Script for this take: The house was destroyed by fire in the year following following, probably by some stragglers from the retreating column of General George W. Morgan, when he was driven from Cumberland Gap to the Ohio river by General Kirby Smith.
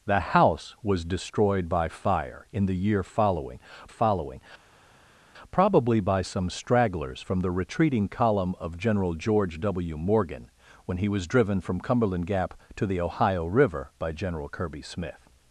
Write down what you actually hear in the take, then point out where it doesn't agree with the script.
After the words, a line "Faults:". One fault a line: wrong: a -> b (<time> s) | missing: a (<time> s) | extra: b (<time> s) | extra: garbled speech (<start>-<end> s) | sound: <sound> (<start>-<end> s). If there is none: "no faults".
The house was destroyed by fire in the year following following, probably by some stragglers from the retreating column of General George W. Morgan, when he was driven from Cumberland Gap to the Ohio river by General Kirby Smith.
Faults:
no faults